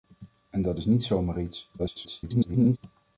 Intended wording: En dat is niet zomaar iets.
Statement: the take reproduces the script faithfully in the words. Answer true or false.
false